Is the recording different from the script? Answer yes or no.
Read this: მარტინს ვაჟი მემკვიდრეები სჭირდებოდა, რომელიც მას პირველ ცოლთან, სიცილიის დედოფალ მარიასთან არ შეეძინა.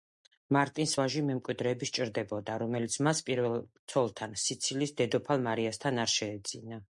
no